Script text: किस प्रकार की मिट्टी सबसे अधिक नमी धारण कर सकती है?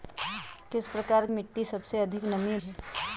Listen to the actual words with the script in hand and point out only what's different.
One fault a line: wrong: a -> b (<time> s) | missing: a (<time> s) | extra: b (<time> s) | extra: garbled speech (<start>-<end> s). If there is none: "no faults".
missing: की (1.2 s)
missing: धारण कर सकती (2.6 s)